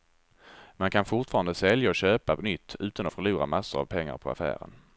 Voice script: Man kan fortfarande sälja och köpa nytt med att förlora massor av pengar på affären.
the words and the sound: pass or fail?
fail